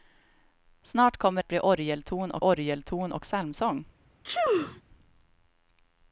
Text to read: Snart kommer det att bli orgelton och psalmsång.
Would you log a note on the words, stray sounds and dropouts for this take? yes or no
yes